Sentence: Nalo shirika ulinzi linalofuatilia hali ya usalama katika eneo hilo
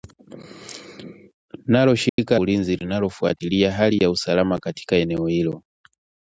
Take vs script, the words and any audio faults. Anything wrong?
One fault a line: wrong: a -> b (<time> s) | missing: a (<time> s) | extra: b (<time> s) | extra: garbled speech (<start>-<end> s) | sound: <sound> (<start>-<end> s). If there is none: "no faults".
sound: dropout (2.1-2.2 s)